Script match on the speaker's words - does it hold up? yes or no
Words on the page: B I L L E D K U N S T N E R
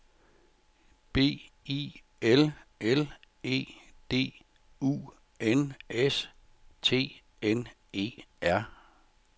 no